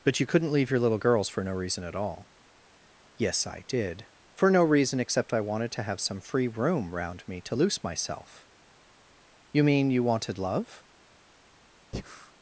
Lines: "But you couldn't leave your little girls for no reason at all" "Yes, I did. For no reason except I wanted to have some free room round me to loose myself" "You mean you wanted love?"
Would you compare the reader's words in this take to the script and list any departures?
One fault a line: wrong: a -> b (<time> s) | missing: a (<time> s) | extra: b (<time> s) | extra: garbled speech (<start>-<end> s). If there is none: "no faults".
no faults